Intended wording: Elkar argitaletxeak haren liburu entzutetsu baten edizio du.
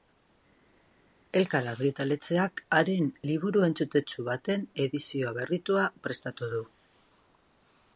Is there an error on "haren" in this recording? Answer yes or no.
no